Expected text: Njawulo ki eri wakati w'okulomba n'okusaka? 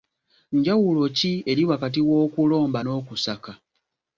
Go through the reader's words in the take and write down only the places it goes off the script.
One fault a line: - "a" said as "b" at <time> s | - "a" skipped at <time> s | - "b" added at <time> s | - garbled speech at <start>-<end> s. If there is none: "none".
none